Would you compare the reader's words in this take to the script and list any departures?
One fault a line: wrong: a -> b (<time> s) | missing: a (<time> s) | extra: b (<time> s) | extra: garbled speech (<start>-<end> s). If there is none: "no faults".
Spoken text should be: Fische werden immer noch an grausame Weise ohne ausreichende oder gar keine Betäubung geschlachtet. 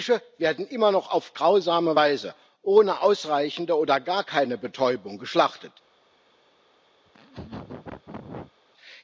wrong: an -> auf (1.1 s)